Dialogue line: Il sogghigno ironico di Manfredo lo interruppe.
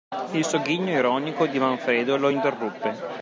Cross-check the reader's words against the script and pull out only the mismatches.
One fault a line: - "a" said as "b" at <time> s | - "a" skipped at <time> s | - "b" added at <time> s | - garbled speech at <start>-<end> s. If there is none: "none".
none